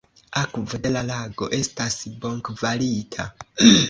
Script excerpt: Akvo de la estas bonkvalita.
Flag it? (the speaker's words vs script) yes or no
yes